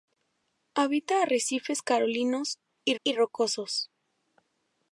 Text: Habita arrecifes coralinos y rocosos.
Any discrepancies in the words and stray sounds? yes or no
yes